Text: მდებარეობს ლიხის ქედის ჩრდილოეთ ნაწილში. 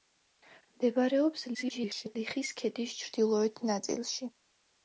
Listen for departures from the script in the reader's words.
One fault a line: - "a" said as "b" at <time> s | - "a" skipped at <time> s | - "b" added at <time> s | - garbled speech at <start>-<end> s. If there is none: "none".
- garbled speech at 1.5-2.2 s